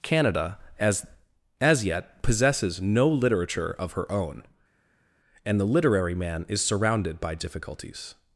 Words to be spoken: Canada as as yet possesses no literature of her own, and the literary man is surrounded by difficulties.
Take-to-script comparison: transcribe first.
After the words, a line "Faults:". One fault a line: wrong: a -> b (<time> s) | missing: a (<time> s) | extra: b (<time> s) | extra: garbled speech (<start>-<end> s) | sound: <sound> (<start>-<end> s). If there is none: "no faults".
Canada as as yet possesses no literature of her own, and the literary man is surrounded by difficulties.
Faults:
no faults